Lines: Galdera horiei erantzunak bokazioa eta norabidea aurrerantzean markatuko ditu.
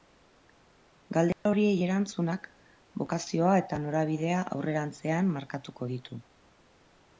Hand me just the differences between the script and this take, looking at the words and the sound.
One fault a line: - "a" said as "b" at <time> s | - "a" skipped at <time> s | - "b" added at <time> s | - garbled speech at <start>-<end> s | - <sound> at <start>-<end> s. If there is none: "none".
- dropout at 1.3-1.5 s